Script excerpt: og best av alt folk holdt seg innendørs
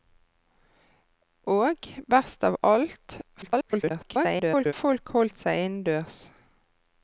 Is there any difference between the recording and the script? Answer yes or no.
yes